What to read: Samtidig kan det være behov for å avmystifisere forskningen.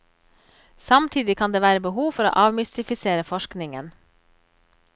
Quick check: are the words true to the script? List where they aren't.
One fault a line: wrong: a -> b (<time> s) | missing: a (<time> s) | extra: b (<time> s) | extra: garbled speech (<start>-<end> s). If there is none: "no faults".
no faults